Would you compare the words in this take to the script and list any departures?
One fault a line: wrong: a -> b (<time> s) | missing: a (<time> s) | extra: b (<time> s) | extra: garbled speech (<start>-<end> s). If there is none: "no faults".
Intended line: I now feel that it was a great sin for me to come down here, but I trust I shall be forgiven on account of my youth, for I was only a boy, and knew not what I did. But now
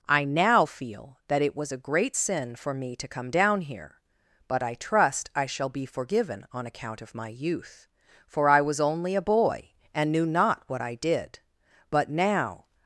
no faults